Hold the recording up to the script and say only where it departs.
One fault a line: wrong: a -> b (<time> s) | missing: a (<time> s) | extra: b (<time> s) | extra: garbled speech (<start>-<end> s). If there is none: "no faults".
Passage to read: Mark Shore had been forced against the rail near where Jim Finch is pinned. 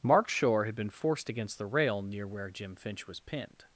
wrong: is -> was (3.1 s)